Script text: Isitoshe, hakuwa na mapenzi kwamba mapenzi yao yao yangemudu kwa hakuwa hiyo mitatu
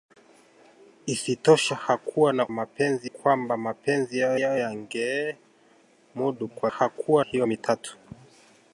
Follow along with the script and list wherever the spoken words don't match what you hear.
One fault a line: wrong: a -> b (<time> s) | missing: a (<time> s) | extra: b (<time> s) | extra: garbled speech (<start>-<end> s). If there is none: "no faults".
no faults